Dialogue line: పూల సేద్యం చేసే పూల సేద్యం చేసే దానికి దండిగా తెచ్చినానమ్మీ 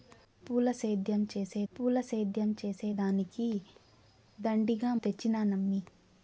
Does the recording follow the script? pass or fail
pass